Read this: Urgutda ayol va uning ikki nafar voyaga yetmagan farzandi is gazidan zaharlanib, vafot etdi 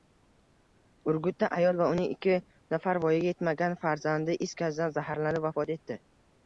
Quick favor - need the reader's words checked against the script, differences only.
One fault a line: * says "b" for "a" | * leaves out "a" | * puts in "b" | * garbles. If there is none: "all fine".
all fine